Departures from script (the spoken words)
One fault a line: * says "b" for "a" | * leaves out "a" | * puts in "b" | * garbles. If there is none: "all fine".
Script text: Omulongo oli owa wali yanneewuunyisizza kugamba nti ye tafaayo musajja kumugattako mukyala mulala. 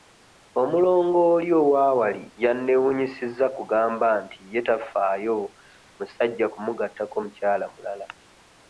all fine